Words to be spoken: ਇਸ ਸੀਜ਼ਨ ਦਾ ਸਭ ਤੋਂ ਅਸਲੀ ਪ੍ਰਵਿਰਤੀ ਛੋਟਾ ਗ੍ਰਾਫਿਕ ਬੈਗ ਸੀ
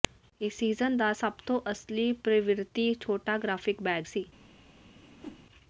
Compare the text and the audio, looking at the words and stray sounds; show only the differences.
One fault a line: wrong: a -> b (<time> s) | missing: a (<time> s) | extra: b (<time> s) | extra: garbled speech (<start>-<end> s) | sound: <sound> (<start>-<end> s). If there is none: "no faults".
sound: whoosh (4.9-5.5 s)